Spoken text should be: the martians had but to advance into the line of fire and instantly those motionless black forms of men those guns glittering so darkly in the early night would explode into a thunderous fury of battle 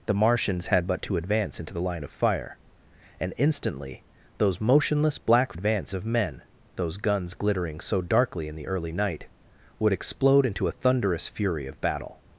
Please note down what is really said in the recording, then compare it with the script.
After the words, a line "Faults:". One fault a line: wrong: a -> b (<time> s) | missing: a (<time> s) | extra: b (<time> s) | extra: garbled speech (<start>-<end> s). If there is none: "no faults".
the martians had but to advance into the line of fire and instantly those motionless black advance of men those guns glittering so darkly in the early night would explode into a thunderous fury of battle
Faults:
wrong: forms -> advance (5.5 s)